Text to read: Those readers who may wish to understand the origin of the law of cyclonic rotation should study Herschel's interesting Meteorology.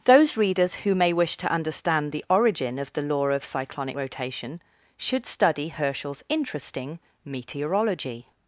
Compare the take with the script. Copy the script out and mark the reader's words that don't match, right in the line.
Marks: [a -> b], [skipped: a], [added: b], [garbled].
Those readers who may wish to understand the origin of the law of cyclonic rotation should study Herschel's interesting Meteorology.